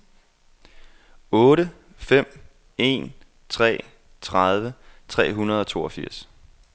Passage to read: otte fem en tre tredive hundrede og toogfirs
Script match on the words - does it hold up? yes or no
no